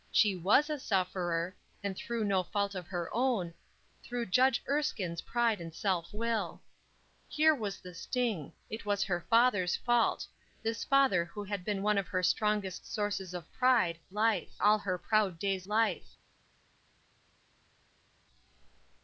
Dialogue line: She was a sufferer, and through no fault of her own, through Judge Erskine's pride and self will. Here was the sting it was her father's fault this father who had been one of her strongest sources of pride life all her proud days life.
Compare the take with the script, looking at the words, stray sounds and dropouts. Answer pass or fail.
pass